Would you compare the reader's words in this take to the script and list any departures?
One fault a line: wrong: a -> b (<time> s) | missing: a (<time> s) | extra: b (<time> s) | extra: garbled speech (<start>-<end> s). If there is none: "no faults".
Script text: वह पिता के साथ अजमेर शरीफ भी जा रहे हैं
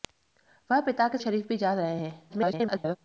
missing: साथ अजमेर (1.2 s)
extra: garbled speech (2.3-3.0 s)